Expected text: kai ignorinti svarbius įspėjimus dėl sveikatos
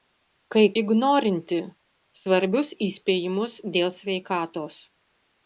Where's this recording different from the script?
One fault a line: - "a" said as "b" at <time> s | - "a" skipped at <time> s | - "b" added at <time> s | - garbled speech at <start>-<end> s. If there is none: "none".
none